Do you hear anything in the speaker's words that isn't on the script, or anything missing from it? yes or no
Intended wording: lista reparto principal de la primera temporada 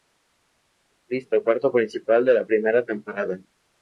no